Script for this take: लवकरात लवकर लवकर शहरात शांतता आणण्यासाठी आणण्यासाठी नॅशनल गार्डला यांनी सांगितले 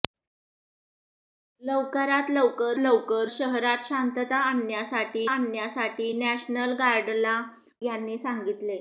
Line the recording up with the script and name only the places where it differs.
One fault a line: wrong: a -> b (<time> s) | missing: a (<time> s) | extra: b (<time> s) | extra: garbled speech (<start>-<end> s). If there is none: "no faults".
no faults